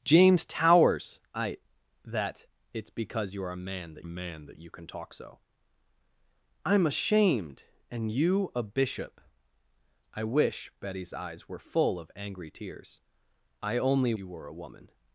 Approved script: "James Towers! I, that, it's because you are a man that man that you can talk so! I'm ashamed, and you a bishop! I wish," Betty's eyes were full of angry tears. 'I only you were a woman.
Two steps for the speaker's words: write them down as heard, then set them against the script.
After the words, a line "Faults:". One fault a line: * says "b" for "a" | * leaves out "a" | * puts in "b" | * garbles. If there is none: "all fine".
"James Towers! I, that, it's because you are a man that man that you can talk so! I'm ashamed, and you a bishop! I wish," Betty's eyes were full of angry tears. 'I only you were a woman.
Faults:
all fine